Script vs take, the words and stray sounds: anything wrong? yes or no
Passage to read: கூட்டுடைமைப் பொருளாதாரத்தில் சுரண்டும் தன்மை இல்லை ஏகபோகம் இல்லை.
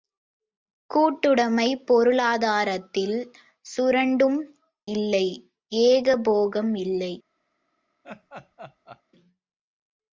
yes